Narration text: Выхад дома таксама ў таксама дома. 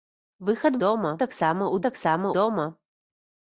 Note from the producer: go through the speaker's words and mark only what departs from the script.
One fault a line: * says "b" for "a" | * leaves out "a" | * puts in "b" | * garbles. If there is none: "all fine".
all fine